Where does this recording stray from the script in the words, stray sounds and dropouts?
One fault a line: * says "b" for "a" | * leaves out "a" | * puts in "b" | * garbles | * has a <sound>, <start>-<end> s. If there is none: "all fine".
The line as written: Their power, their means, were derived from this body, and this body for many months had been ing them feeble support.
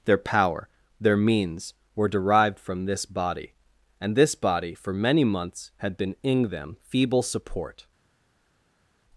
all fine